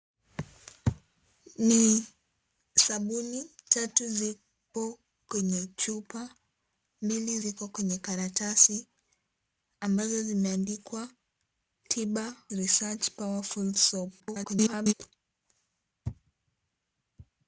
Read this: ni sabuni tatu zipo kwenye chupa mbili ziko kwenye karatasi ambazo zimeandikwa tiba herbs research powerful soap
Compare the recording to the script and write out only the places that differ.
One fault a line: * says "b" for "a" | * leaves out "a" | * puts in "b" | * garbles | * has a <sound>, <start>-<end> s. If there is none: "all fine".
* leaves out "herbs"
* garbles